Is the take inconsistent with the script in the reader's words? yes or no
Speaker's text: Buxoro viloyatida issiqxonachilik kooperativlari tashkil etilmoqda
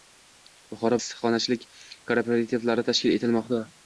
yes